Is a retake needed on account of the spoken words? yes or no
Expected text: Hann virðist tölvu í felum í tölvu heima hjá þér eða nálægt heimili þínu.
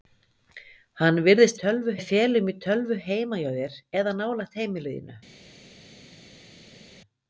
no